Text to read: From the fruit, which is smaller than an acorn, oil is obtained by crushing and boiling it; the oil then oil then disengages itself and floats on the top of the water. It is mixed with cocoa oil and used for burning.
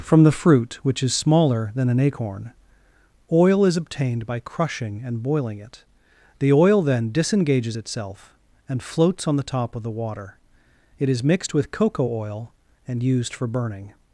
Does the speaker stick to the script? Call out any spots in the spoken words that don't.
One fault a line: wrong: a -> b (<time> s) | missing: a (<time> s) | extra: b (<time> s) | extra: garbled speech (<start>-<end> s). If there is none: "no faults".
missing: oil then (7.1 s)